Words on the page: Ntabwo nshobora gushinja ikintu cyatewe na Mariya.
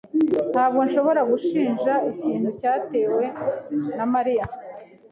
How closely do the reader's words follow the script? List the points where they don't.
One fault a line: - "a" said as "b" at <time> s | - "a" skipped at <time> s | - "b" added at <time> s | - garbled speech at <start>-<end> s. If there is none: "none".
none